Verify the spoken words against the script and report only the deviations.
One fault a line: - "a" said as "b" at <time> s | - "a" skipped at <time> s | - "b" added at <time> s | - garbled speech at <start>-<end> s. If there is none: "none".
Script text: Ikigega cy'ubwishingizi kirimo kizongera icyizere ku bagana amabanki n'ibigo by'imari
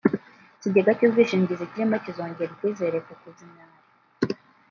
- "bagana amabanki n'ibigo" skipped at 3.3 s